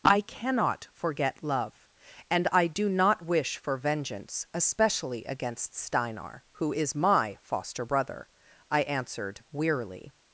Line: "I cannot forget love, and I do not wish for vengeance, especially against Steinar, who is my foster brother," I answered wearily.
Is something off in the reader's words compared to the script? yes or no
no